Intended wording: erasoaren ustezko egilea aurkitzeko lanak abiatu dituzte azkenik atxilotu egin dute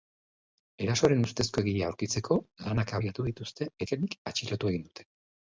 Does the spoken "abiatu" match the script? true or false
true